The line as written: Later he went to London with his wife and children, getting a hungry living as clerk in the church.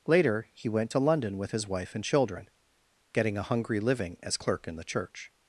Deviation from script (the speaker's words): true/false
false